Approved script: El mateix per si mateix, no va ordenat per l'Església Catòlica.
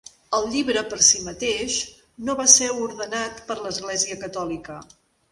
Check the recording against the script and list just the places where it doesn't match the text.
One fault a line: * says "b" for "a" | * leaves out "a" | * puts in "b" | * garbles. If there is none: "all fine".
* says "llibre" for "mateix"
* puts in "ser"